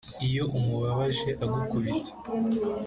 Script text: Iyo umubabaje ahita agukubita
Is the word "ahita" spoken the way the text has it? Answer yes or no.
no